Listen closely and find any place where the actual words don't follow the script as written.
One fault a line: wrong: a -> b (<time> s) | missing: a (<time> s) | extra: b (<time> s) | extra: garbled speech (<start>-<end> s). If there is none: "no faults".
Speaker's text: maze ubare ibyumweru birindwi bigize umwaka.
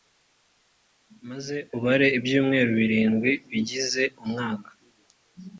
no faults